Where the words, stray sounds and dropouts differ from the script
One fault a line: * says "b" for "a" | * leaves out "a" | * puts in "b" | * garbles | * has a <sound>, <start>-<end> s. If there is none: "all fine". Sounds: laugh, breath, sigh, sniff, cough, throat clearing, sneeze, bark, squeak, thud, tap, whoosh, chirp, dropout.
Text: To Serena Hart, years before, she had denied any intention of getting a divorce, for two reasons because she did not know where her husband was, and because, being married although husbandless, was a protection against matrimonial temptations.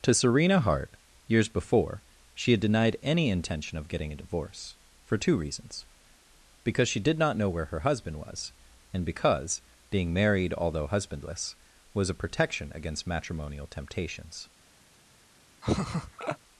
* has a laugh, 15.6-16.4 s